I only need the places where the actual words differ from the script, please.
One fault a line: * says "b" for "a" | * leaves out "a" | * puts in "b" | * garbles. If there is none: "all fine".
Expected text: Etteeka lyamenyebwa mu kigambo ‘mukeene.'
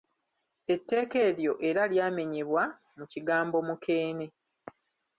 * puts in "eryo era"